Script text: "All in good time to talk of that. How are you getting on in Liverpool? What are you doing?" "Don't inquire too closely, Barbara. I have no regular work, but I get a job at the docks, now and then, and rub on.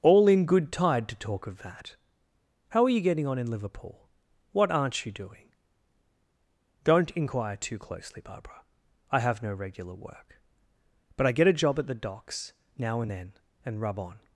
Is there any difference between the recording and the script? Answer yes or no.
yes